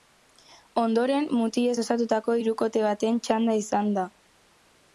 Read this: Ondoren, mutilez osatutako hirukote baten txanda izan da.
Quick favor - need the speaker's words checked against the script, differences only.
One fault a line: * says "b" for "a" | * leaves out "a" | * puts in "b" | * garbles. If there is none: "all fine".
all fine